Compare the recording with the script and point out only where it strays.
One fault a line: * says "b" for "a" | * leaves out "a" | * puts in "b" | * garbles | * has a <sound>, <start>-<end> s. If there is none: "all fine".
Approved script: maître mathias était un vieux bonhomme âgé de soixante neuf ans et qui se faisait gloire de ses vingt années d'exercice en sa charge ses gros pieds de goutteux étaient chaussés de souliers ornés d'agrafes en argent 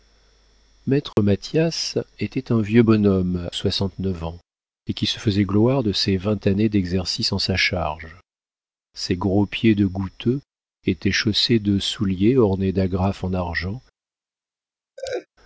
* has a dropout, 1.1-1.2 s
* leaves out "âgé de"
* has a laugh, 15.0-15.3 s